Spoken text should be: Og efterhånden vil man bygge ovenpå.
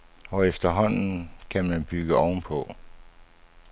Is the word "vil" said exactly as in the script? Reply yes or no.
no